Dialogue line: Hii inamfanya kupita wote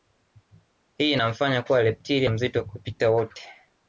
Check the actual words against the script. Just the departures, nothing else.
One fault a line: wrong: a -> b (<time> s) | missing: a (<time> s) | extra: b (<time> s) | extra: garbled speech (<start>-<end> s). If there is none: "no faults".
extra: kuwa reptilia mzito (1.6 s)